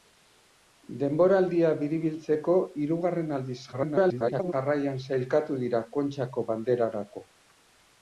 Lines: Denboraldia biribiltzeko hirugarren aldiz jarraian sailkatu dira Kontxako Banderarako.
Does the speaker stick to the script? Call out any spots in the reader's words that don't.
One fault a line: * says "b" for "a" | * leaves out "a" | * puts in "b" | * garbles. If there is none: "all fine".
* garbles